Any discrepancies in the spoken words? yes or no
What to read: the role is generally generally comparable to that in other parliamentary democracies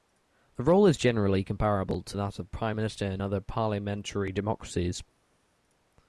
yes